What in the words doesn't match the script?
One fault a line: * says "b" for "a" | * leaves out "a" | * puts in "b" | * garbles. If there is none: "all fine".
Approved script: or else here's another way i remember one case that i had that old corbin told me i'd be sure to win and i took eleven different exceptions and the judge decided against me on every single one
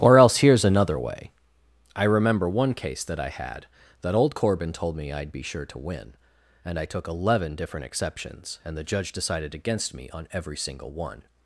all fine